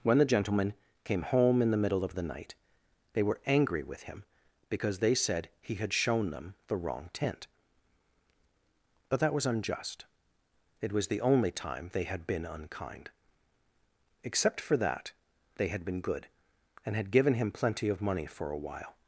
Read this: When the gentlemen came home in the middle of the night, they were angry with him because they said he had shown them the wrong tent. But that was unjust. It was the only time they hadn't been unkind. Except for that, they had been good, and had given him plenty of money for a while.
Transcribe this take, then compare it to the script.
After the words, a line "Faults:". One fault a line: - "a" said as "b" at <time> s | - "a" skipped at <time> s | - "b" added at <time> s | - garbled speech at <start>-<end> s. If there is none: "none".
When the gentlemen came home in the middle of the night, they were angry with him because they said he had shown them the wrong tent. But that was unjust. It was the only time they had been unkind. Except for that, they had been good, and had given him plenty of money for a while.
Faults:
- "hadn't" said as "had" at 12.1 s